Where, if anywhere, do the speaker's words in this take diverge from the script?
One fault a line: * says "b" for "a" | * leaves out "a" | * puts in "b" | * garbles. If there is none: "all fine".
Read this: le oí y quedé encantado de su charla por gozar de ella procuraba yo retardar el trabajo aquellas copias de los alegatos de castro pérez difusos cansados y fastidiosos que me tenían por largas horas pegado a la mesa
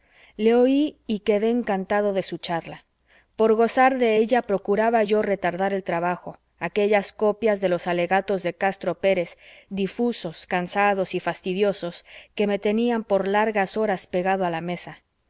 all fine